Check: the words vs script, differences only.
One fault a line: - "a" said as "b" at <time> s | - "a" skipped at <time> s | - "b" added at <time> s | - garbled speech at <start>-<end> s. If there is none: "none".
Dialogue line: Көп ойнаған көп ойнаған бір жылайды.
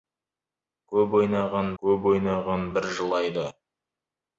none